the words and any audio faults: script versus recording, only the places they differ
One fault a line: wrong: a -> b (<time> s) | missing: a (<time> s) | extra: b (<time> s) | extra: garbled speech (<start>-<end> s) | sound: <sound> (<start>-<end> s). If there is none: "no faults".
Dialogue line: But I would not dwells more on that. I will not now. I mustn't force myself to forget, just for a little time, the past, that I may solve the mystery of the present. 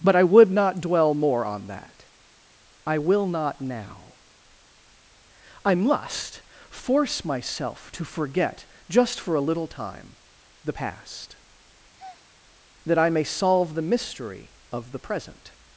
wrong: dwells -> dwell (0.8 s)
wrong: mustn't -> must (5.8 s)
sound: breath (12.0-12.3 s)